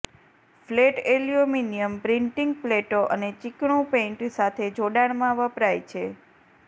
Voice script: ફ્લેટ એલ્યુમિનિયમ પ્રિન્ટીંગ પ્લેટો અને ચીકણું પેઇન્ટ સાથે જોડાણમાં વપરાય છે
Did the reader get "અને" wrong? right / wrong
right